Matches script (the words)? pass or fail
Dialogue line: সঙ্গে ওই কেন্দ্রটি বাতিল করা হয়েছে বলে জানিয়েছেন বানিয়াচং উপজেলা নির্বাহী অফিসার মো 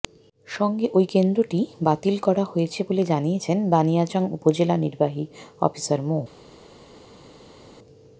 pass